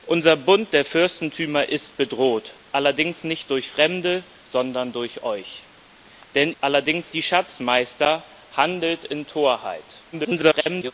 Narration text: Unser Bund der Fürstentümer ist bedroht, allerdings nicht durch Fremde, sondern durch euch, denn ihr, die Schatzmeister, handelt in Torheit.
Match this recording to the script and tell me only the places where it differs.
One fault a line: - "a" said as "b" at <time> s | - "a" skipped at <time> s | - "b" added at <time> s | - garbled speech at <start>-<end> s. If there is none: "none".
- "ihr" said as "allerdings" at 6.6 s
- garbled speech at 10.1-10.9 s